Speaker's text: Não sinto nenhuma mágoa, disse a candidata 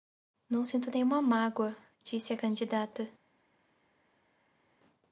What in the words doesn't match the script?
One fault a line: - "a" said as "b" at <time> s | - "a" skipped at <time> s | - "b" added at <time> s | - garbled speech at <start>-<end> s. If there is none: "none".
none